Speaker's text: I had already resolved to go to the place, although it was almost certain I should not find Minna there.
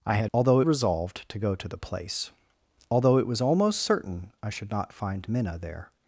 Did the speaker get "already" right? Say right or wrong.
wrong